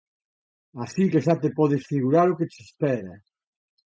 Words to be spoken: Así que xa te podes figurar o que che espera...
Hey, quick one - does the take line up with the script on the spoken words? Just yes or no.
yes